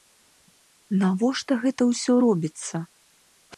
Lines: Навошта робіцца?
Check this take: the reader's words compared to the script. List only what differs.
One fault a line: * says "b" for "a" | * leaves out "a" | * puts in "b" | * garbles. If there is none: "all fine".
* puts in "гэта ўсё"